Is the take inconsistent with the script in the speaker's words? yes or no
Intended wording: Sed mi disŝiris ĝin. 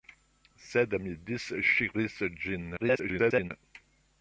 yes